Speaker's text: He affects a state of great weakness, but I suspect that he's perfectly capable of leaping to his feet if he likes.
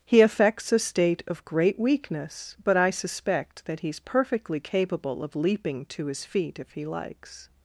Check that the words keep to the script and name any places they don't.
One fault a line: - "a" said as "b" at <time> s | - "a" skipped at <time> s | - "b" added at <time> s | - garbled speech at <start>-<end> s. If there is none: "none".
none